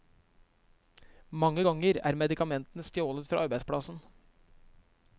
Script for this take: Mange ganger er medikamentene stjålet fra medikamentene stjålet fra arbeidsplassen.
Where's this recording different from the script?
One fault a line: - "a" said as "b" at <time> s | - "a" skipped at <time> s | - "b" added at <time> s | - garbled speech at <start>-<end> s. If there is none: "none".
- "medikamentene stjålet fra" skipped at 3.5 s